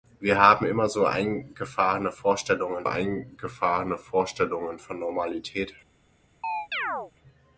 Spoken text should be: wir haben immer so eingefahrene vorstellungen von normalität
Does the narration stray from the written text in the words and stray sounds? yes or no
yes